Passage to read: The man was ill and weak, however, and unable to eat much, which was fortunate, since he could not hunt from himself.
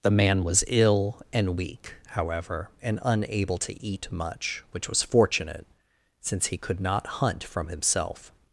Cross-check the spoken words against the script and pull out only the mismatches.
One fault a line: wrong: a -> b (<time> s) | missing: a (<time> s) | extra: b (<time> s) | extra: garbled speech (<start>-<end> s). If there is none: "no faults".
no faults